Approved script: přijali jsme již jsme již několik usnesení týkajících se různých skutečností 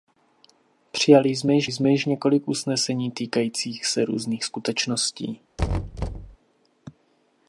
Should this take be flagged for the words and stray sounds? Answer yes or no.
yes